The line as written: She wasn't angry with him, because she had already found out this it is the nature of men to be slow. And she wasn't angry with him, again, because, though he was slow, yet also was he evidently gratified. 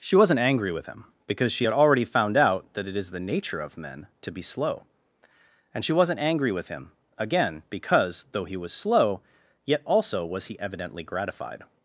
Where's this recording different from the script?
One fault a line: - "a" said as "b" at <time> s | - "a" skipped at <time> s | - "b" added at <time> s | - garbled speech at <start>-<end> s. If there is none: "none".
- "this" said as "that" at 2.7 s